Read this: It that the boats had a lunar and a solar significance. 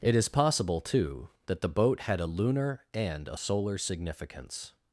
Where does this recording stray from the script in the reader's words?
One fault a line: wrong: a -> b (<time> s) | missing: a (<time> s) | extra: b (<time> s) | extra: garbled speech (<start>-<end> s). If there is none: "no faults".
extra: is possible too (0.1 s)
wrong: boats -> boat (1.7 s)